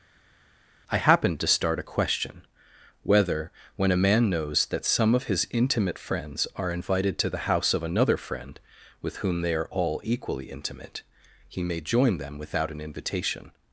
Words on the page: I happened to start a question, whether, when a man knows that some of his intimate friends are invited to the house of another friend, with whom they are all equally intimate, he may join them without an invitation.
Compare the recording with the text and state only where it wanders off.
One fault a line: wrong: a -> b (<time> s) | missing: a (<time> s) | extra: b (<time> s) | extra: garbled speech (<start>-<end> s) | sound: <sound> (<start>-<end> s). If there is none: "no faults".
no faults